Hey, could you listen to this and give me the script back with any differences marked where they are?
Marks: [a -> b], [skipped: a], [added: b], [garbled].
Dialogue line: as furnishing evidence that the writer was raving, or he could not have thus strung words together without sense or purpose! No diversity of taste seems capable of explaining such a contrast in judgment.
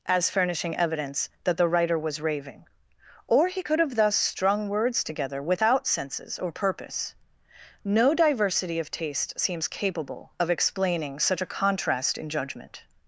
as furnishing evidence that the writer was raving, or he could [skipped: not] have thus strung words together without [sense -> senses] or purpose! No diversity of taste seems capable of explaining such a contrast in judgment.